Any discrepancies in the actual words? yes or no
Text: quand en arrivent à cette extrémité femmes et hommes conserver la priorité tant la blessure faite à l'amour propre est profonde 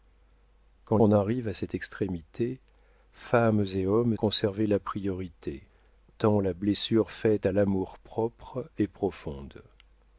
no